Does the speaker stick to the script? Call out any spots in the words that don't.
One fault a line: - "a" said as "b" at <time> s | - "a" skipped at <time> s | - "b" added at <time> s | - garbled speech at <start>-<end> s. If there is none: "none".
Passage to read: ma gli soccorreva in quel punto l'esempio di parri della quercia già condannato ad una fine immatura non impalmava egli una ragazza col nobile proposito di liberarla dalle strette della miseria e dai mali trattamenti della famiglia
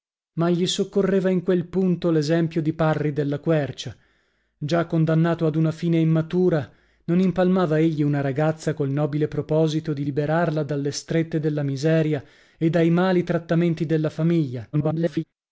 - garbled speech at 14.7-15.2 s